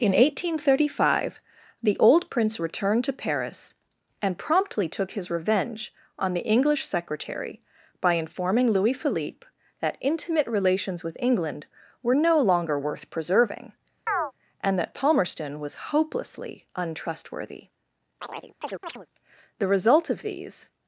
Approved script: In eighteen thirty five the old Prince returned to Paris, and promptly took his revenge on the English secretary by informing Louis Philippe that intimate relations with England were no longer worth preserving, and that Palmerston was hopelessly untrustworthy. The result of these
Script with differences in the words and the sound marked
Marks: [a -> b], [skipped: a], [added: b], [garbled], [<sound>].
In eighteen thirty five the old Prince returned to Paris, and promptly took his revenge on the English secretary by informing Louis Philippe that intimate relations with England were no longer worth preserving, [chirp] and that Palmerston was hopelessly untrustworthy. [chirp] The result of these